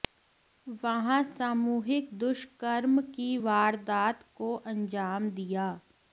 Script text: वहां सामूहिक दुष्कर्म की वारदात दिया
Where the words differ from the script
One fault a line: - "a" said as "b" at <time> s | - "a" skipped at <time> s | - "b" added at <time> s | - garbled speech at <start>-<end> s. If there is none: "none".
- "को अंजाम" added at 4.4 s